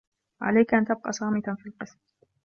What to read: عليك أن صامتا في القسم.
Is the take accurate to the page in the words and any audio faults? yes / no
no